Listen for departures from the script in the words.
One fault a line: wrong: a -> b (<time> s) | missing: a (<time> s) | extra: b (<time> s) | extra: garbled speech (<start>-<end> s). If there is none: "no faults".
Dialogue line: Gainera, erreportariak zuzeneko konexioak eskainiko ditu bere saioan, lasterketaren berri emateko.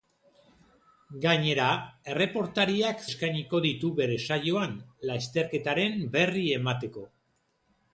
missing: zuzeneko konexioak (3.0 s)